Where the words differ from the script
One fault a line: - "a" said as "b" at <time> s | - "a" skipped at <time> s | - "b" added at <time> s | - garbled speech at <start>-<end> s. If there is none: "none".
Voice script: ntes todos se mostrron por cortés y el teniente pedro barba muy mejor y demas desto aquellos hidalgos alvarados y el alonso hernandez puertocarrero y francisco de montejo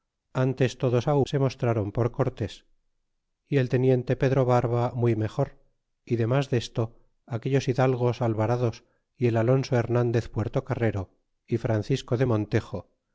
none